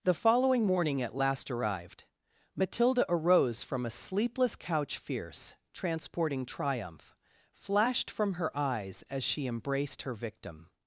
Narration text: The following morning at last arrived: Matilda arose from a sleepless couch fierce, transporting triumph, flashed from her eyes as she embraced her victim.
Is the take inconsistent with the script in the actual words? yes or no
no